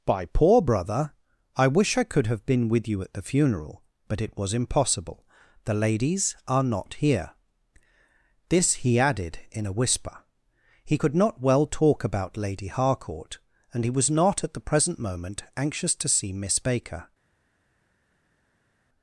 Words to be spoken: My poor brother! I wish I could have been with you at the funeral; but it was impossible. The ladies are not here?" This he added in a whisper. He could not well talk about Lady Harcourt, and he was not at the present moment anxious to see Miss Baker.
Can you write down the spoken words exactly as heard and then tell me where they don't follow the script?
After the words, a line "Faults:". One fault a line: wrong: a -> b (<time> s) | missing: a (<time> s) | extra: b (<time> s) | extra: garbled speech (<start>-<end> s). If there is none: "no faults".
By poor brother! I wish I could have been with you at the funeral; but it was impossible. The ladies are not here?" This he added in a whisper. He could not well talk about Lady Harcourt, and he was not at the present moment anxious to see Miss Baker.
Faults:
wrong: My -> By (0.0 s)